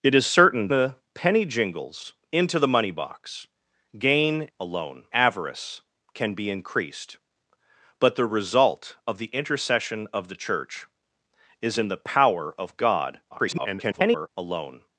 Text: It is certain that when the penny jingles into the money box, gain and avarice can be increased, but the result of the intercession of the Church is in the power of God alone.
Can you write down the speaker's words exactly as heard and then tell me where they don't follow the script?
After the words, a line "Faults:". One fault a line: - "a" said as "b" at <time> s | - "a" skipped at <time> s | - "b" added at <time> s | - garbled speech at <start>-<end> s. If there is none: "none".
It is certain the penny jingles into the money box, gain alone avarice can be increased, but the result of the intercession of the Church is in the power of God [garbled] alone.
Faults:
- "that when" skipped at 0.7 s
- "and" said as "alone" at 4.6 s
- garbled speech at 13.3-14.3 s